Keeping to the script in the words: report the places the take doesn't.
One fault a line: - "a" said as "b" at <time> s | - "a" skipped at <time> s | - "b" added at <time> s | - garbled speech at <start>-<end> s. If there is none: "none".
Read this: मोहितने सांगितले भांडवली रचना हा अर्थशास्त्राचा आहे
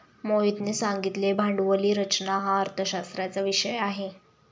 - "विषय" added at 3.4 s